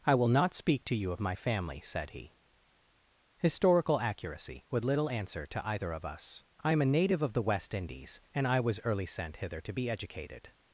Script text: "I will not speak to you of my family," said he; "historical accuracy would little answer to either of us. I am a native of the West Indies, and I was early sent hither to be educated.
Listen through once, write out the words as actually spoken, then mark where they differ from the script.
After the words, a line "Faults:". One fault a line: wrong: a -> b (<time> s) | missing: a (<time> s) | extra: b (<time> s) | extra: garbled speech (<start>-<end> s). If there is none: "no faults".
"I will not speak to you of my family," said he; "historical accuracy would little answer to either of us. I am a native of the West Indies, and I was early sent hither to be educated.
Faults:
no faults